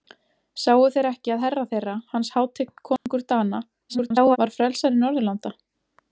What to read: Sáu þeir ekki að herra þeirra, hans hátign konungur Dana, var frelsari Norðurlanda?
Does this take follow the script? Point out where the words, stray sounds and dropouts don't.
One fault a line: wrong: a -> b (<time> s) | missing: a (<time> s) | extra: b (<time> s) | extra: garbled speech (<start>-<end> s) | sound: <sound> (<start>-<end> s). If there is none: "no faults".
sound: dropout (3.0-3.1 s)
extra: garbled speech (3.9-4.4 s)